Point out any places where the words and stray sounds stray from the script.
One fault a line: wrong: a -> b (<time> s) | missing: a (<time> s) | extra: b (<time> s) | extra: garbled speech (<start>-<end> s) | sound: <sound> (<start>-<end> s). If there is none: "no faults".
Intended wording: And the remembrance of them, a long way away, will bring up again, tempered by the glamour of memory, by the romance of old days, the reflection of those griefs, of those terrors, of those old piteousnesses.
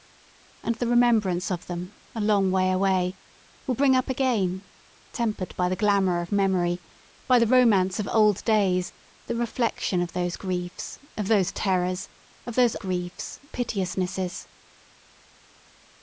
wrong: old -> griefs (12.8 s)